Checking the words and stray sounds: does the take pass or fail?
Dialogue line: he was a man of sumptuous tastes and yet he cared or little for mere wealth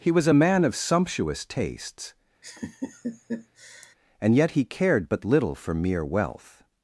fail